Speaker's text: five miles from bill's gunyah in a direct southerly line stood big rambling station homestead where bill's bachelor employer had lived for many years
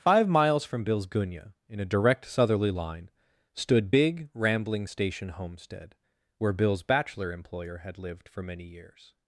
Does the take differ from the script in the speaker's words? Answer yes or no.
no